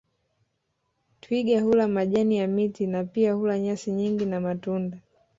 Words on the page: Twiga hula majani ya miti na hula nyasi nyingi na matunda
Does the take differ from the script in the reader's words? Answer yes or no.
yes